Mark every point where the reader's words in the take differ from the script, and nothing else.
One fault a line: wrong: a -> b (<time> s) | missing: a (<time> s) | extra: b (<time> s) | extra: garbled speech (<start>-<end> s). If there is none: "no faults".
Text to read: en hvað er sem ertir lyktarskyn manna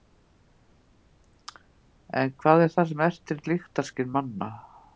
extra: það (2.8 s)